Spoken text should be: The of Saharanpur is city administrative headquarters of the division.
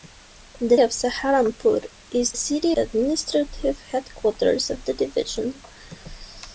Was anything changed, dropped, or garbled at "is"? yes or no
no